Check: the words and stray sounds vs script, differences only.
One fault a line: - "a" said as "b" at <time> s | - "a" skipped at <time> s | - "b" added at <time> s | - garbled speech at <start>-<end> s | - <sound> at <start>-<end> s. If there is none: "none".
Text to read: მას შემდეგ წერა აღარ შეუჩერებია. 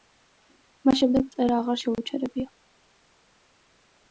none